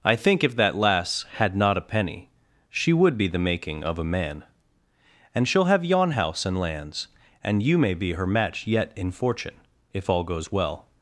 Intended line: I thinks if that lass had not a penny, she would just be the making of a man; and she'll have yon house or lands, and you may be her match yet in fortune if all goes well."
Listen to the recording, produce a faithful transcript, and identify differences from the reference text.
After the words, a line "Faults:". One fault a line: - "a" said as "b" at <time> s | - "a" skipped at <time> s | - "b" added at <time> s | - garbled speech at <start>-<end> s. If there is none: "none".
I think if that lass had not a penny, she would be the making of a man; and she'll have yon house and lands, and you may be her match yet in fortune if all goes well."
Faults:
- "thinks" said as "think" at 0.1 s
- "just" skipped at 3.2 s
- "or" said as "and" at 6.5 s